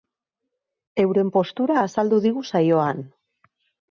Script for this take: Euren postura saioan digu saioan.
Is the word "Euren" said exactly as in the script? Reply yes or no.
yes